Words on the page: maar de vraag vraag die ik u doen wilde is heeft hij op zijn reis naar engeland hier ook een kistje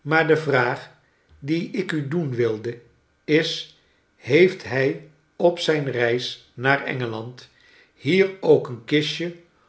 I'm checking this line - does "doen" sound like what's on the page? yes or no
yes